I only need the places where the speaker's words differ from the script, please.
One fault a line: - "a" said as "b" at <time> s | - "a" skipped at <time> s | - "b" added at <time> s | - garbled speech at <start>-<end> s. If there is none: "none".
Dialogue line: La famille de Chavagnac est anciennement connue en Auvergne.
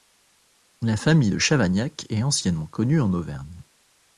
none